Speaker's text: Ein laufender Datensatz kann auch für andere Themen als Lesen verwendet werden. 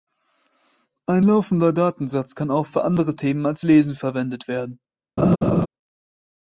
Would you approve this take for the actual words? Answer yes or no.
yes